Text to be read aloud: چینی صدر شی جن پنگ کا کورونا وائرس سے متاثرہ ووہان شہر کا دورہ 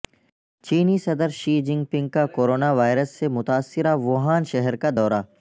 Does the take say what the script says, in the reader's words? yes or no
yes